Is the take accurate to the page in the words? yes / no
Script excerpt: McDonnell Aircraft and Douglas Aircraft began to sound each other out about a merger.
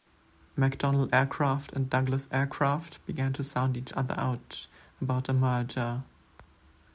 yes